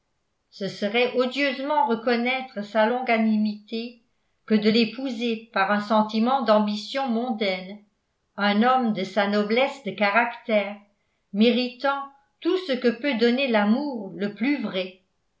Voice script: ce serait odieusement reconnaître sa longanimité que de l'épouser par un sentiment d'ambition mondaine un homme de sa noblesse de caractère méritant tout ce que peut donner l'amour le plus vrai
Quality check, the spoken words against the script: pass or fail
pass